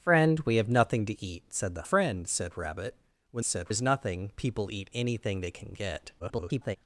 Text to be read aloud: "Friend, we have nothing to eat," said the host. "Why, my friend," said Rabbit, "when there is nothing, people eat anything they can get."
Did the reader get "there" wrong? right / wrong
wrong